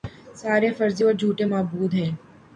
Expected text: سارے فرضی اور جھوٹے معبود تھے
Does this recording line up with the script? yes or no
no